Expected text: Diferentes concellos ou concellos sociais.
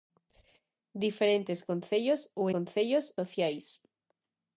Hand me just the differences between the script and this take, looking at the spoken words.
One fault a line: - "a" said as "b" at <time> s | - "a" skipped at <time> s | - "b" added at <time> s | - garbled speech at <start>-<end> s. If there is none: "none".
none